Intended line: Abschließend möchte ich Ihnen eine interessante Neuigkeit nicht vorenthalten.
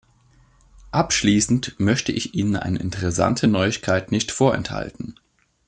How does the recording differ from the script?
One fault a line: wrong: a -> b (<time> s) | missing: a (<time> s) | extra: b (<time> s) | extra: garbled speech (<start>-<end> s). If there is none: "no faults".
no faults